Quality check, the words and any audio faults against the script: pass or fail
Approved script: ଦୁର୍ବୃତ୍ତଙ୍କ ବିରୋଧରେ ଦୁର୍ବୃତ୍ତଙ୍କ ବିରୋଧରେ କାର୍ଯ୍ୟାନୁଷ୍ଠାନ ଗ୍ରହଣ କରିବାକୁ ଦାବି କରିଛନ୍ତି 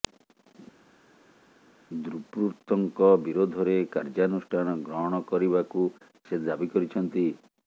fail